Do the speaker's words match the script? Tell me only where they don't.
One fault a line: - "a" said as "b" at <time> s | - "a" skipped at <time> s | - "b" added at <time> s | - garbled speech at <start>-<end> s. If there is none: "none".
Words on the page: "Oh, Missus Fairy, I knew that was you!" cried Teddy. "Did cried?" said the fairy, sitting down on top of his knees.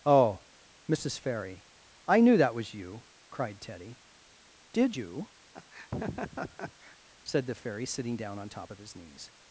- "cried" said as "you" at 4.9 s